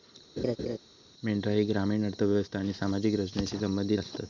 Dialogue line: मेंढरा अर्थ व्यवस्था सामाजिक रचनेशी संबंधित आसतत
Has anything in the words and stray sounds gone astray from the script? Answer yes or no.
yes